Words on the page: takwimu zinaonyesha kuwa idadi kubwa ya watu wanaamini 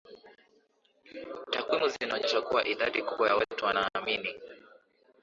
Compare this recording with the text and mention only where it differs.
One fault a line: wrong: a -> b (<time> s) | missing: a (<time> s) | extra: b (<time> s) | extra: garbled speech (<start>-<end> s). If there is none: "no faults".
no faults